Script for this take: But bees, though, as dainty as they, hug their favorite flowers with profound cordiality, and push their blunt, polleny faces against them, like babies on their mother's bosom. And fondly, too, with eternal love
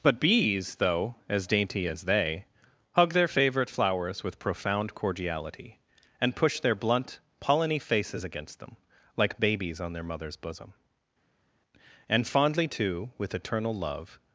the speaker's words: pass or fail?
pass